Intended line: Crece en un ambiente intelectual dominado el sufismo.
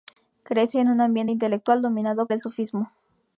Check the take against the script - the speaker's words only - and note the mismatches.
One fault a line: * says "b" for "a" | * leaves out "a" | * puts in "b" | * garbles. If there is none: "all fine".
all fine